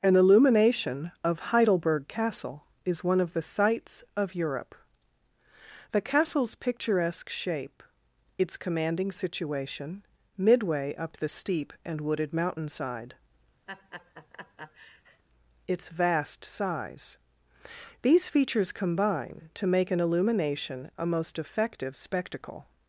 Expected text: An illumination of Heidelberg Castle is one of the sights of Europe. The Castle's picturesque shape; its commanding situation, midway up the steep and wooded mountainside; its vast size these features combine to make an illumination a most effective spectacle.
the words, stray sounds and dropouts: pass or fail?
fail